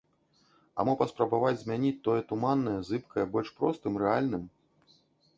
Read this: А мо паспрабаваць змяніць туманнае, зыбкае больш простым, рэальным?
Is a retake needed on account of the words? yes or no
yes